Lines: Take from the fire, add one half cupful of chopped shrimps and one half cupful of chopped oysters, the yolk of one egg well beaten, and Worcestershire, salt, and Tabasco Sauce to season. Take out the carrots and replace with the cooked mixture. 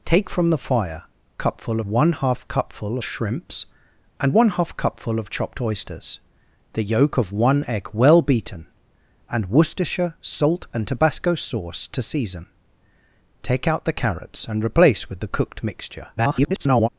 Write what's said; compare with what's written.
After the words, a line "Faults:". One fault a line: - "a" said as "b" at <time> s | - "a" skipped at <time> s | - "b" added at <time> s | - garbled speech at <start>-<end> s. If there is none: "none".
Take from the fire, cupful one half cupful shrimps and one half cupful of chopped oysters, the yolk of one egg well beaten, and Worcestershire, salt, and Tabasco Sauce to season. Take out the carrots and replace with the cooked mixture. [garbled]
Faults:
- "add" said as "cupful" at 1.4 s
- "of chopped" skipped at 3.0 s
- garbled speech at 16.2-16.9 s